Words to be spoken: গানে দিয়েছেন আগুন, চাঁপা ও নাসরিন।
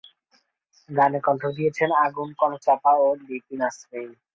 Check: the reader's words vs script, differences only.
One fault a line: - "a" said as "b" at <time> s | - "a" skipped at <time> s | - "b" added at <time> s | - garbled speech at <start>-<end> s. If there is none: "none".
- "কণ্ঠ" added at 1.2 s
- "কনক" added at 2.4 s
- "লিপি" added at 3.2 s